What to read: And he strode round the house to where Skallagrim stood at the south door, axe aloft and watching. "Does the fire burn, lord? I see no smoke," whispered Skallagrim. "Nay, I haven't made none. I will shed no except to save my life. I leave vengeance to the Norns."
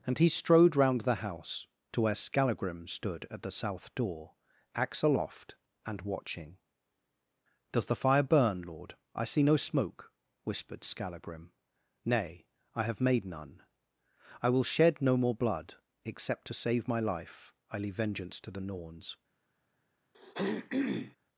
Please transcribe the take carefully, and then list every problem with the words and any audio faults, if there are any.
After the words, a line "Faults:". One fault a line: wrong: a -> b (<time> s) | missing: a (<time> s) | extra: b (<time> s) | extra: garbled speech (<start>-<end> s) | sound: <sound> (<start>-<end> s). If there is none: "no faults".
And he strode round the house to where Skallagrim stood at the south door, axe aloft and watching. "Does the fire burn, lord? I see no smoke," whispered Skallagrim. "Nay, I have made none. I will shed no more blood, except to save my life. I leave vengeance to the Norns."
Faults:
wrong: haven't -> have (12.8 s)
extra: more blood (15.2 s)
sound: throat clearing (20.1-21.2 s)